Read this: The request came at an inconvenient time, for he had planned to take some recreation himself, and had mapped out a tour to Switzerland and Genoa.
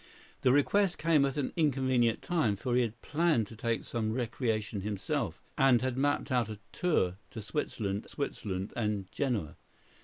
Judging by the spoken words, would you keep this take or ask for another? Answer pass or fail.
fail